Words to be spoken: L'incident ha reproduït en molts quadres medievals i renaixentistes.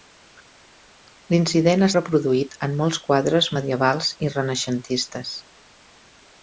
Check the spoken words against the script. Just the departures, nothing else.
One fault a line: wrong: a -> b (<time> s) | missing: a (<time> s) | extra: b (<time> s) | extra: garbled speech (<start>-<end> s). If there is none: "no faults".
no faults